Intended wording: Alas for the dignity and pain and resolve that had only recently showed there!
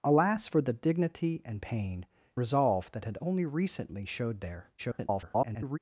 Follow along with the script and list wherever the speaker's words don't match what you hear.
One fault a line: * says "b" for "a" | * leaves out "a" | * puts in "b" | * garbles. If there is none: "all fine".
* leaves out "and"
* garbles